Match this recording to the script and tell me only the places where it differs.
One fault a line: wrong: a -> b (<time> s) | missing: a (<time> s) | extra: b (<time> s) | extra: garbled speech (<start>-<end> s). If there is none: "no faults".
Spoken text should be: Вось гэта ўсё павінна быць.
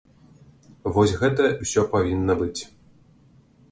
no faults